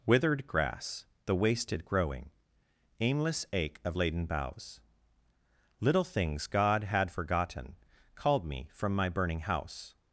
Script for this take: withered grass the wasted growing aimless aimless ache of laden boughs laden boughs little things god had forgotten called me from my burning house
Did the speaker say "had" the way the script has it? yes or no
yes